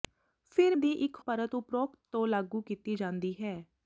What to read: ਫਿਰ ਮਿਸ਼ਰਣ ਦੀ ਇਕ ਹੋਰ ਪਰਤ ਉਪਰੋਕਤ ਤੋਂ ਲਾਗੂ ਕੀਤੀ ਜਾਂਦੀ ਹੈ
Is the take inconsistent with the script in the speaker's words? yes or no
yes